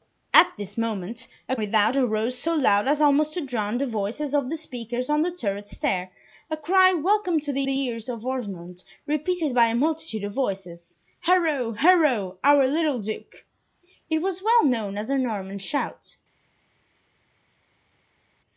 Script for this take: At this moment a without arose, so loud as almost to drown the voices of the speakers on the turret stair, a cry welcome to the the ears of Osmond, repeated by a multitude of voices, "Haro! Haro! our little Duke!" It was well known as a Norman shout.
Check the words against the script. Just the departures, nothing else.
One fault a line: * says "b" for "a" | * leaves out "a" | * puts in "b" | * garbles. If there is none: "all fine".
all fine